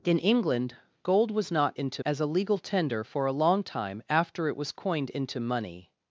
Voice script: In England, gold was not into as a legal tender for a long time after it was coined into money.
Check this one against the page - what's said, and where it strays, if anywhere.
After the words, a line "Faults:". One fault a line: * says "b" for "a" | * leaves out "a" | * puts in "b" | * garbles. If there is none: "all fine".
In England, gold was not into as a legal tender for a long time after it was coined into money.
Faults:
all fine